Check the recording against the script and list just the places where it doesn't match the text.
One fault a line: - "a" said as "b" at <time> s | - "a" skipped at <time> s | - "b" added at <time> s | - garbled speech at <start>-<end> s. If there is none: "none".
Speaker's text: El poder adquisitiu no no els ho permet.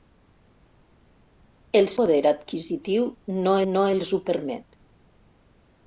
none